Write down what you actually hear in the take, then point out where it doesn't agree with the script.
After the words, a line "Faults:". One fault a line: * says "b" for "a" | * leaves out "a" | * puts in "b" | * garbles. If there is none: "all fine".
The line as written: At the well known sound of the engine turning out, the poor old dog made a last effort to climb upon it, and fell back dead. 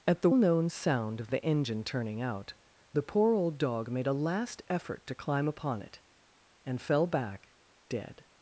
At the known sound of the engine turning out, the poor old dog made a last effort to climb upon it, and fell back dead.
Faults:
* leaves out "well"